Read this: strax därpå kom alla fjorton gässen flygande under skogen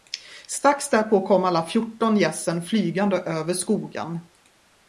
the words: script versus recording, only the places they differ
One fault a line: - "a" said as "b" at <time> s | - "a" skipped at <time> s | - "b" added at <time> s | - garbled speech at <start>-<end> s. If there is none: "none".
- "under" said as "över" at 3.2 s